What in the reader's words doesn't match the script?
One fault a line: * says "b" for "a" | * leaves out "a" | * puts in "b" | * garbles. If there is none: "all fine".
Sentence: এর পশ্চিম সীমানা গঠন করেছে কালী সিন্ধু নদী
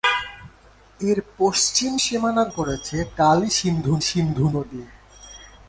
* leaves out "গঠন"
* puts in "সিন্ধু"